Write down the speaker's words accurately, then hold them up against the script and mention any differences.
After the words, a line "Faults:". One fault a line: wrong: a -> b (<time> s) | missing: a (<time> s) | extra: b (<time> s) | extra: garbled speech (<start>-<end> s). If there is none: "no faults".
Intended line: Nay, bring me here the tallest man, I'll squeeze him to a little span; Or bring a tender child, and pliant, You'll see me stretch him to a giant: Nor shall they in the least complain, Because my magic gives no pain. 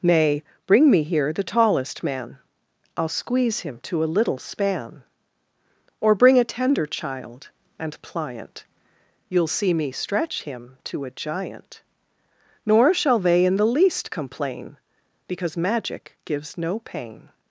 Nay, bring me here the tallest man, I'll squeeze him to a little span; Or bring a tender child, and pliant, You'll see me stretch him to a giant: Nor shall they in the least complain, Because magic gives no pain.
Faults:
missing: my (15.6 s)